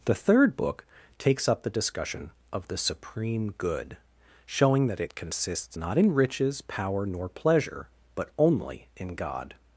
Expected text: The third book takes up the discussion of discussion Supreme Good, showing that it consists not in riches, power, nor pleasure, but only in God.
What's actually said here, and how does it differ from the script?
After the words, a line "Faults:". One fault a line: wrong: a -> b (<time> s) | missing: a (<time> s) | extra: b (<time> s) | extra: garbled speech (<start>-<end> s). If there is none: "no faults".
The third book takes up the discussion of the Supreme Good, showing that it consists not in riches, power, nor pleasure, but only in God.
Faults:
wrong: discussion -> the (2.7 s)